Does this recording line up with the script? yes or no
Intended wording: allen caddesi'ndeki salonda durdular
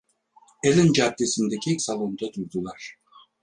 yes